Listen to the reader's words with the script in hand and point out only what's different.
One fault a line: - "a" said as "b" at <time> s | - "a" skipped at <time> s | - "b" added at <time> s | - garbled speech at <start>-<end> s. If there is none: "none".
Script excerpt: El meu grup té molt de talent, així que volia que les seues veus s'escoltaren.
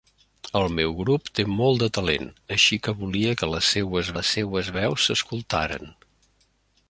- "les seues" added at 4.2 s